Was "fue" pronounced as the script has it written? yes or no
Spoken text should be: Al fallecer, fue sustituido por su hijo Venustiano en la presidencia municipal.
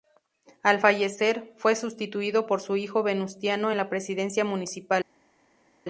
yes